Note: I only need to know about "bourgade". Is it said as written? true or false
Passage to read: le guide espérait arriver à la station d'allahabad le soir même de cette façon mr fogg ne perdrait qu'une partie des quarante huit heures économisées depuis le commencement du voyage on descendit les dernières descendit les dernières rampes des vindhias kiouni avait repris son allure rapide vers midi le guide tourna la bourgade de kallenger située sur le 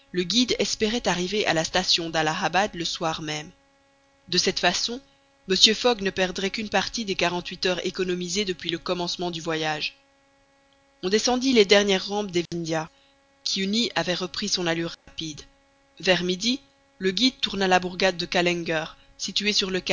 true